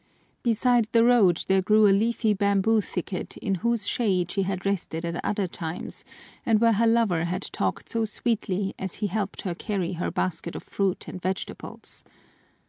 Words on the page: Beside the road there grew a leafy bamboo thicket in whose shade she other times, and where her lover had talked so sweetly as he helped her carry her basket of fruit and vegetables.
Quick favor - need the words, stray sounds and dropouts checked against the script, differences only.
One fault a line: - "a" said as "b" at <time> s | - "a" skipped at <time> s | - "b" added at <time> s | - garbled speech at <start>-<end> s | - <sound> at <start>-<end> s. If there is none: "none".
- "had rested at" added at 4.4 s